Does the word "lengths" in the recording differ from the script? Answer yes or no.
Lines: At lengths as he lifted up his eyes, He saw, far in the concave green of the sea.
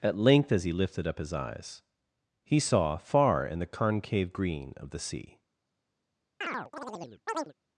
yes